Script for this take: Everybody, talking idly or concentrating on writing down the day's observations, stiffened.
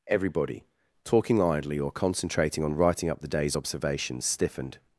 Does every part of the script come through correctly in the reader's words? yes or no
no